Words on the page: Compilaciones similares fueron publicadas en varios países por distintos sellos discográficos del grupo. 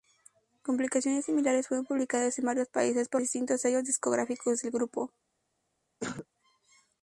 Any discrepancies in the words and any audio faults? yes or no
yes